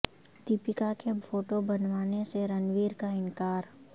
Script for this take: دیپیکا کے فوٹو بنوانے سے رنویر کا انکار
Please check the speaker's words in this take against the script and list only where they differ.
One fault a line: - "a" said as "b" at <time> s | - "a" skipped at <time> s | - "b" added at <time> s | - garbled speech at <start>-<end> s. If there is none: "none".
none